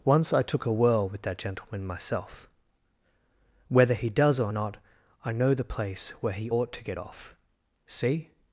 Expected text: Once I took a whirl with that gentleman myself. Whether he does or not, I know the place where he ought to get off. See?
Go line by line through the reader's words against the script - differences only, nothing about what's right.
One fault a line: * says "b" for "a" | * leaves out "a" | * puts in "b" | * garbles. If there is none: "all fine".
all fine